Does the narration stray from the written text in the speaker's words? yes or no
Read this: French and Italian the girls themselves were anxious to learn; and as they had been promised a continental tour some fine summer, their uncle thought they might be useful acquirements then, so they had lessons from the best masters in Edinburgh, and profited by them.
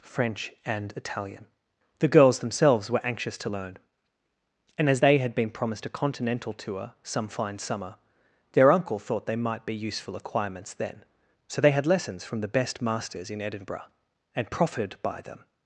no